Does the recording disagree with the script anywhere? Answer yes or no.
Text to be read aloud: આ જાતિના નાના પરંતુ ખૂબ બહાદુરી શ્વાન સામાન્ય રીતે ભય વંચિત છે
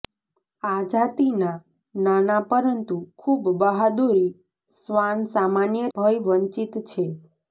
yes